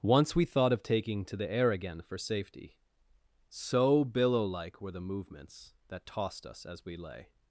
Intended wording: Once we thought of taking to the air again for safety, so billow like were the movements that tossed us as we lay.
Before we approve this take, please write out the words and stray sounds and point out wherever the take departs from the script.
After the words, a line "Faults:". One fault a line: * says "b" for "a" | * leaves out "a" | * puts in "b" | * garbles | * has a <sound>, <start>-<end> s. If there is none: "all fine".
Once we thought of taking to the air again for safety, so billow like were the movements that tossed us as we lay.
Faults:
all fine